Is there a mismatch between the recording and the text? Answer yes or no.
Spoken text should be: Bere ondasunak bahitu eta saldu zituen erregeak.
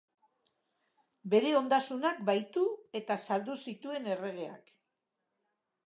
no